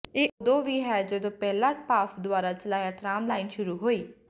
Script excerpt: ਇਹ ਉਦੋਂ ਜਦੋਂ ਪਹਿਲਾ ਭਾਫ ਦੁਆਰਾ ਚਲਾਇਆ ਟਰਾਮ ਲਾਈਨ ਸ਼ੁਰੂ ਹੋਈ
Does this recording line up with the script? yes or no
no